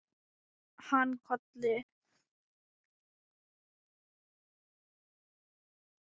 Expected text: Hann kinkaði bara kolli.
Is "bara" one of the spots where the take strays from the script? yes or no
yes